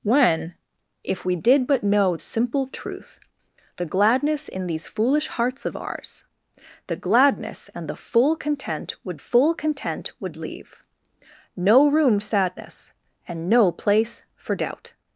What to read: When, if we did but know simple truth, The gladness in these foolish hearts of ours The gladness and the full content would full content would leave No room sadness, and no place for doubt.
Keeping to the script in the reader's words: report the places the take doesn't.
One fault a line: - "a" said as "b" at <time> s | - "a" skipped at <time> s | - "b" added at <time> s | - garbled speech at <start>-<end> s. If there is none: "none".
none